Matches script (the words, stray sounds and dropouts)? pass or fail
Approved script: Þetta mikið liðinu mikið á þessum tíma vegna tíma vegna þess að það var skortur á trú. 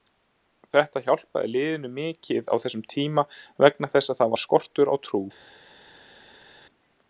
fail